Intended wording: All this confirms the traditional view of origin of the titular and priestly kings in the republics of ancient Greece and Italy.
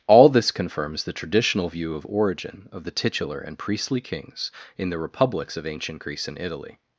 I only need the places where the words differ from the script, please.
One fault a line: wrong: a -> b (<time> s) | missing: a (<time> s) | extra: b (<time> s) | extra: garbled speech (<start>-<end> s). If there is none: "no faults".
no faults